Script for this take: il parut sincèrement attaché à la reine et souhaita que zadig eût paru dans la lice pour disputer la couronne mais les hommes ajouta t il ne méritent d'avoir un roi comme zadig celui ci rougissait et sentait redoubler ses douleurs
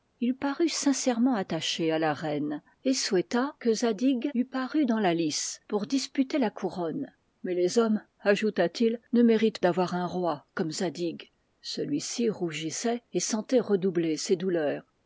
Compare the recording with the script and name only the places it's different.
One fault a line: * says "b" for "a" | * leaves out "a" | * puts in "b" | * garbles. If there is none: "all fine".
all fine